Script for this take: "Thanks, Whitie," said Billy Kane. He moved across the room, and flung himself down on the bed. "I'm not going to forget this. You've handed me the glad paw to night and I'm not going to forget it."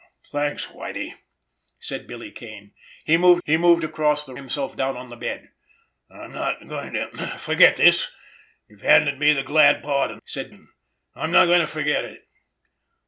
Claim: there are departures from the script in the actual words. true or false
true